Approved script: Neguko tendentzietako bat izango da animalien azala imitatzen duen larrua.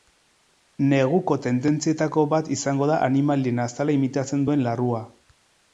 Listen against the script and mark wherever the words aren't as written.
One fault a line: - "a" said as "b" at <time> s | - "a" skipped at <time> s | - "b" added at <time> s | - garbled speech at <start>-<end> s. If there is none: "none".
none